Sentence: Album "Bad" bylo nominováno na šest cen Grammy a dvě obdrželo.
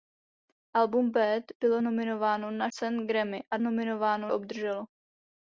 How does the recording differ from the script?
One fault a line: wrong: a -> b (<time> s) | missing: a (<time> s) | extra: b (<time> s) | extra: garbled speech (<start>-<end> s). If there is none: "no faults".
missing: šest (2.7 s)
wrong: dvě -> nominováno (3.6 s)